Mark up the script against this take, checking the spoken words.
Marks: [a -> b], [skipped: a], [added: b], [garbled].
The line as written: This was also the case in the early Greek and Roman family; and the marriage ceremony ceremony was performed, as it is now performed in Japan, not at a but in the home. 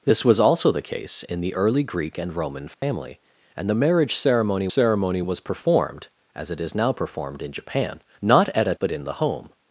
This was also the case in the early Greek and Roman family; and the marriage ceremony ceremony was performed, as it is now performed in Japan, not at a but in the home.